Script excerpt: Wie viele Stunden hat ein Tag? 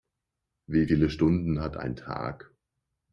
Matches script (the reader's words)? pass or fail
pass